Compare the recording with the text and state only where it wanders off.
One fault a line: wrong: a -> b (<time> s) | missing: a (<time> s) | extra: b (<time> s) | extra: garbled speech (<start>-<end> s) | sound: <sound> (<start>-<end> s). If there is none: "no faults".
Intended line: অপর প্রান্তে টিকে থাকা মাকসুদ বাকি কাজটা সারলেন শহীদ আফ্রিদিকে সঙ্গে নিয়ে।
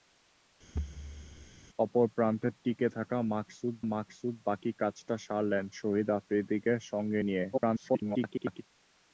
sound: thud (0.7-1.5 s)
extra: মাকসুদ (3.9 s)
extra: garbled speech (7.5-8.6 s)